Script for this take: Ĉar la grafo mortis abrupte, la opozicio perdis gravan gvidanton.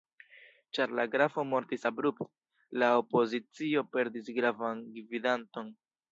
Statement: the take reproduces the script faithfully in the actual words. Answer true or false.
true